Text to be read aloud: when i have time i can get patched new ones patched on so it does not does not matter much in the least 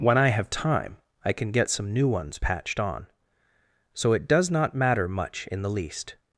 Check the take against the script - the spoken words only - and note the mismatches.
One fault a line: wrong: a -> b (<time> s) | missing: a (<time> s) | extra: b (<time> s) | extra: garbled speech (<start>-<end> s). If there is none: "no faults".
wrong: patched -> some (1.7 s)
missing: does not (4.7 s)